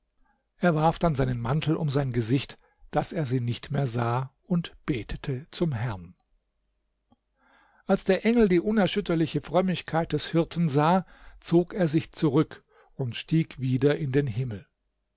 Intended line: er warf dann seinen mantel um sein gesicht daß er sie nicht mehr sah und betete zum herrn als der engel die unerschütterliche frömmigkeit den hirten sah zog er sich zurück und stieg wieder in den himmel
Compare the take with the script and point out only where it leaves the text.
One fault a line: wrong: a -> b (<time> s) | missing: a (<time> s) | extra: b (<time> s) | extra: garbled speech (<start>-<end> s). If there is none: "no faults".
wrong: den -> des (10.1 s)